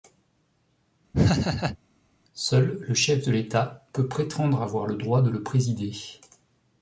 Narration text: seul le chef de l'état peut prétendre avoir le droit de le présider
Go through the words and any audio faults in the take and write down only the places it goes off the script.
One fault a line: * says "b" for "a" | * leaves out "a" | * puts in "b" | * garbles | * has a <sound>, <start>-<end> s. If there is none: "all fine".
* has a laugh, 1.1-1.8 s